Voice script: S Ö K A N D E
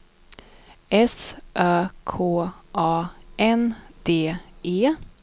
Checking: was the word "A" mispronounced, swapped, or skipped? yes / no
no